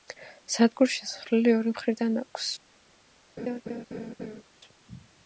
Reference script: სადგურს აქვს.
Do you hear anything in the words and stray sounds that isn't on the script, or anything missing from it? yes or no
yes